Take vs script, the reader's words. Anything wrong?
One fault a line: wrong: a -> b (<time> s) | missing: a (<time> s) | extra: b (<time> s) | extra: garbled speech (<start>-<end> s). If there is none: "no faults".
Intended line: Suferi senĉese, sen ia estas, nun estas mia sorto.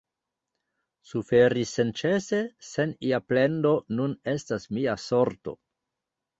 wrong: estas -> plendo (3.3 s)